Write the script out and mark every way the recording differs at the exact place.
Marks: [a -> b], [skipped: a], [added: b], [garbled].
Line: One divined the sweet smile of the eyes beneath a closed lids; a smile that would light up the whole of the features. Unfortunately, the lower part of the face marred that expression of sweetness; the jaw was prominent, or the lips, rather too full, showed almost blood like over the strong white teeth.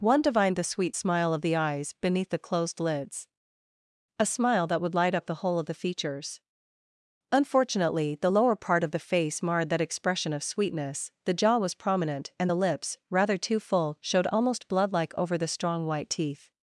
One divined the sweet smile of the eyes beneath [a -> the] closed lids; a smile that would light up the whole of the features. Unfortunately, the lower part of the face marred that expression of sweetness; the jaw was prominent, [or -> and] the lips, rather too full, showed almost blood like over the strong white teeth.